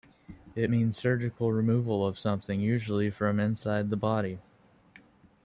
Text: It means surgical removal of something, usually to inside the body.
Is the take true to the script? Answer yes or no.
no